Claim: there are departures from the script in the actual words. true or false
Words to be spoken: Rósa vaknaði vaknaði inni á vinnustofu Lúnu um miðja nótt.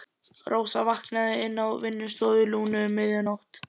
true